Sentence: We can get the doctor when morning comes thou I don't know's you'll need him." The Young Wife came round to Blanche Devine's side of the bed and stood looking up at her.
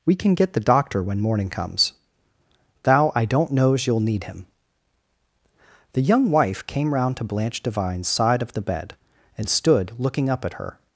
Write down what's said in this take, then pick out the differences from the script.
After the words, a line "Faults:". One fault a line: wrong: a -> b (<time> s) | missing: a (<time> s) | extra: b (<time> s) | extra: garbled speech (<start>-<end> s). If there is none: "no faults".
We can get the doctor when morning comes thou I don't know's you'll need him." The Young Wife came round to Blanche Devine's side of the bed and stood looking up at her.
Faults:
no faults